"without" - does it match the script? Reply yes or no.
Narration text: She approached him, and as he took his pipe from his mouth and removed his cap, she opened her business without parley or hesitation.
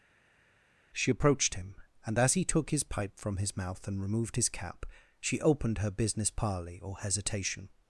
no